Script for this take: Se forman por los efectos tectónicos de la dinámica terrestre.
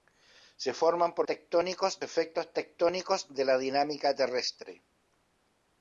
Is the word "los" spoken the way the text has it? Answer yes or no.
no